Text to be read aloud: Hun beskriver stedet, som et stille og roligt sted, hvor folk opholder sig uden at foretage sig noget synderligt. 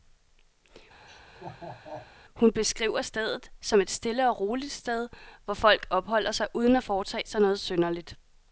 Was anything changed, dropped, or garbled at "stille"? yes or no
no